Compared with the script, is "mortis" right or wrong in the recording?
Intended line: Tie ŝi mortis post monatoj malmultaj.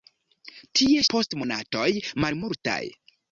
wrong